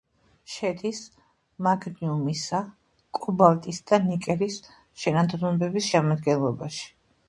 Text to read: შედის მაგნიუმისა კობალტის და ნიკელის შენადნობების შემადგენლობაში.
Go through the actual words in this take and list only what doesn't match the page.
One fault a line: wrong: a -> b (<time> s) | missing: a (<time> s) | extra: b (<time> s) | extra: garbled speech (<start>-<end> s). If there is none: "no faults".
no faults